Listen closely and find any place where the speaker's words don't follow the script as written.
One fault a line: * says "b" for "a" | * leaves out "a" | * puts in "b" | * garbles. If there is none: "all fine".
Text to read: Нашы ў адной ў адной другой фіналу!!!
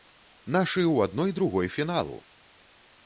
* leaves out "ў адной"